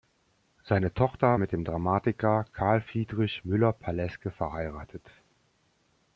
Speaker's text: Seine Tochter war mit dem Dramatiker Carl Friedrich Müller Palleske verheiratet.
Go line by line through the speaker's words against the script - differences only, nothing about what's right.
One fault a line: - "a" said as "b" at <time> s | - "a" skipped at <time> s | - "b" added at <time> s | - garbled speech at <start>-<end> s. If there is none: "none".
- "war" skipped at 1.4 s